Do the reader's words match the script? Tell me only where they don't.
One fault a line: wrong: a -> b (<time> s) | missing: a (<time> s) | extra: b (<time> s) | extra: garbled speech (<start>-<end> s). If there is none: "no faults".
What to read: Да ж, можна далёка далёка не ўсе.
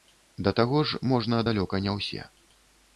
extra: таго (0.6 s)
missing: далёка (1.8 s)